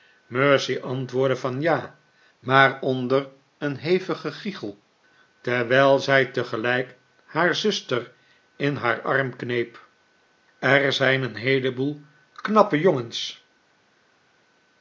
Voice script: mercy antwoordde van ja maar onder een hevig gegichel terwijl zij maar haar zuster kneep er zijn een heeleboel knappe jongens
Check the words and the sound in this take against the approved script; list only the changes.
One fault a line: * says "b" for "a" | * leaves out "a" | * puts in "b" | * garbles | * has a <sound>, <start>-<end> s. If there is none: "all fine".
* says "tegelijk" for "maar"
* puts in "in haar arm"